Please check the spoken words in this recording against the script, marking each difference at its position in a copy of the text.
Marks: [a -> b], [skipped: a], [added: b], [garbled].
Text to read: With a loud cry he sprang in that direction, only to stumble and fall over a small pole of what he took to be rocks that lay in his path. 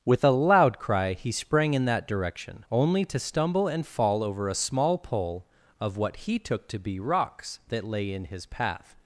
With a loud cry he sprang in that direction, only to stumble and fall over a small pole of what he took to be rocks that lay in his path.